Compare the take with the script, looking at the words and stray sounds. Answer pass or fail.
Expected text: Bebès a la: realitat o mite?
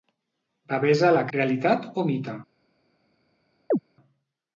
fail